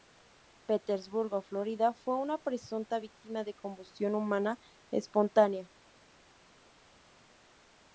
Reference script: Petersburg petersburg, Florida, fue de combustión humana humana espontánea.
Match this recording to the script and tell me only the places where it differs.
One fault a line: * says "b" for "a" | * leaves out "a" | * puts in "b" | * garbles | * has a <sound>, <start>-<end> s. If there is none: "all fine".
* leaves out "petersburg"
* puts in "una presunta víctima"
* leaves out "humana"